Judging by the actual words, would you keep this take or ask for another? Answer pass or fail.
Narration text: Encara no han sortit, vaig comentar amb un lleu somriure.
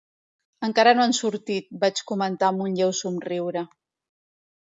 pass